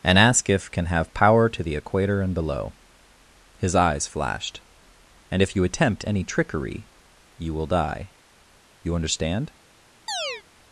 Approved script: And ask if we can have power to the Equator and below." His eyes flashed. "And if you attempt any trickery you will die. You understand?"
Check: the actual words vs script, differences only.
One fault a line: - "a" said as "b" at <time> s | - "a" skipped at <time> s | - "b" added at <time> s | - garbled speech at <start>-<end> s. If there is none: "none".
- "we" skipped at 0.7 s